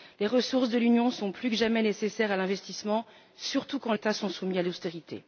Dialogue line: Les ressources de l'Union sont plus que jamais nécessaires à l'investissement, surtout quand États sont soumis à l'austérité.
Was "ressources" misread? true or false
false